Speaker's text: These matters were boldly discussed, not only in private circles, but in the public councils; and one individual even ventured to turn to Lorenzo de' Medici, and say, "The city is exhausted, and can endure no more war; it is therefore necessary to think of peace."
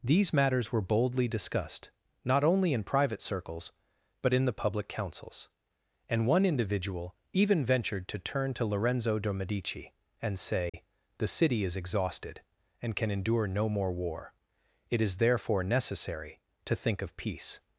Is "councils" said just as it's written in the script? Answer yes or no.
yes